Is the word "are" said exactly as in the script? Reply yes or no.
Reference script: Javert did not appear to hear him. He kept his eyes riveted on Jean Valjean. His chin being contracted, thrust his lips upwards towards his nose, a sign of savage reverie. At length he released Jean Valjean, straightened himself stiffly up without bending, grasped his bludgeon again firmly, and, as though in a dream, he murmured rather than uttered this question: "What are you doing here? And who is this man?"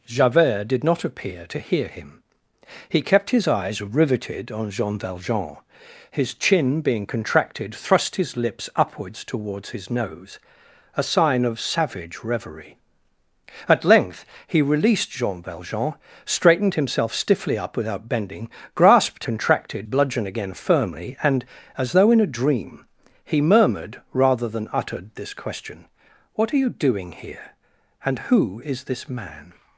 yes